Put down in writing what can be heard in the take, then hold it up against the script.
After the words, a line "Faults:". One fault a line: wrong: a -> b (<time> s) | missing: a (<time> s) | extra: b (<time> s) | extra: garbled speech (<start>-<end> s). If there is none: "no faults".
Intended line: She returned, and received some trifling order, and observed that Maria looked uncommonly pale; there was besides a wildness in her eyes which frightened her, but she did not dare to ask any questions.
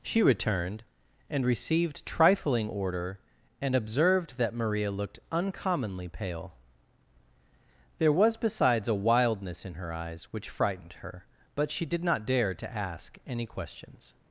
She returned, and received trifling order, and observed that Maria looked uncommonly pale; there was besides a wildness in her eyes which frightened her, but she did not dare to ask any questions.
Faults:
missing: some (2.0 s)